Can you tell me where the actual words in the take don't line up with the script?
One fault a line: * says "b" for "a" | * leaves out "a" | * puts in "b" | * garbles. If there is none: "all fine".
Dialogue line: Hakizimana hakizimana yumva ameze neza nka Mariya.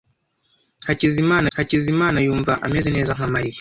all fine